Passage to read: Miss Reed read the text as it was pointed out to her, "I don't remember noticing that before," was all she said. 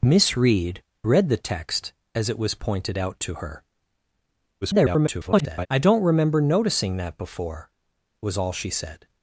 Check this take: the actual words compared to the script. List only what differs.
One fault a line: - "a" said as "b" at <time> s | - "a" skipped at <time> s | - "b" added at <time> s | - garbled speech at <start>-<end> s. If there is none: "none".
- garbled speech at 4.6-5.7 s